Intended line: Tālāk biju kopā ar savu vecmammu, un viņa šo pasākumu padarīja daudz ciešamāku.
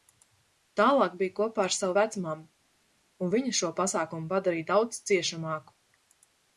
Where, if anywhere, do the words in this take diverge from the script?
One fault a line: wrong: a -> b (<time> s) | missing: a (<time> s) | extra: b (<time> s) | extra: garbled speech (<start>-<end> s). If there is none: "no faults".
no faults